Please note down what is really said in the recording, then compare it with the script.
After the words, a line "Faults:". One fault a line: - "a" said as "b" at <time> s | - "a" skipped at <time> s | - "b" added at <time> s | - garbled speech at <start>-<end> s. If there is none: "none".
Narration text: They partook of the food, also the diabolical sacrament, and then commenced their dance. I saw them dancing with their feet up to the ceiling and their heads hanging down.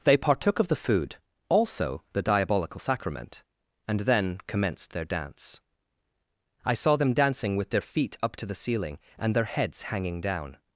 They partook of the food, also the diabolical sacrament, and then commenced their dance. I saw them dancing with their feet up to the ceiling and their heads hanging down.
Faults:
none